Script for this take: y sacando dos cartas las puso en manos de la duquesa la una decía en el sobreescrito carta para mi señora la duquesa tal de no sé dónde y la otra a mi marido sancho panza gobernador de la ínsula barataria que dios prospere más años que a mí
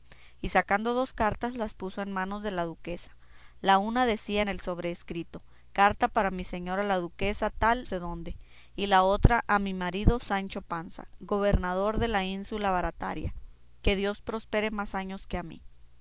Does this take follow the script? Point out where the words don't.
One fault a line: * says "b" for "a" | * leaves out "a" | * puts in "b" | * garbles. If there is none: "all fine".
* leaves out "de no"